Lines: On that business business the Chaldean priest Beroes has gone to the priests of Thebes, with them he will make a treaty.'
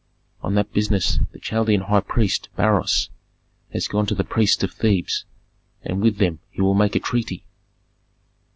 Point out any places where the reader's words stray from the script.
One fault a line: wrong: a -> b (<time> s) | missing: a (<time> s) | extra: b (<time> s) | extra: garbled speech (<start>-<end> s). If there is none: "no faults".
missing: business (1.2 s)
extra: high (1.8 s)
extra: and (5.8 s)